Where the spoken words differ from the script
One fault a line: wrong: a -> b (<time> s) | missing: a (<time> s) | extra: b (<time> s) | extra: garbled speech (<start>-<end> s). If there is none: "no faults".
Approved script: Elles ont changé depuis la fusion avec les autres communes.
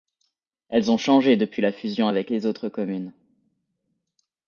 no faults